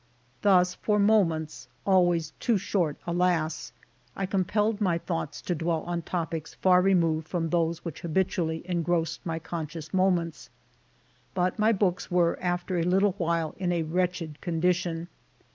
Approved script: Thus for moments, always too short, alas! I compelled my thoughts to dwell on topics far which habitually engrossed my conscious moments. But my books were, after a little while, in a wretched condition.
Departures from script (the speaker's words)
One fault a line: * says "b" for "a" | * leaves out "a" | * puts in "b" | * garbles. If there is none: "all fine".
* puts in "removed from those"